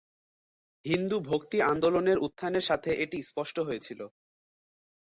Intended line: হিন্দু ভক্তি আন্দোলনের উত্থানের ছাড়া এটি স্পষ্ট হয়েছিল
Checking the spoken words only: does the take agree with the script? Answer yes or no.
no